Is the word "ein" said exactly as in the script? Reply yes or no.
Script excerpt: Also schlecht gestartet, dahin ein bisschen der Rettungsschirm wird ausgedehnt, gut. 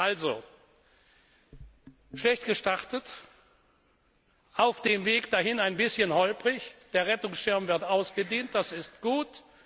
yes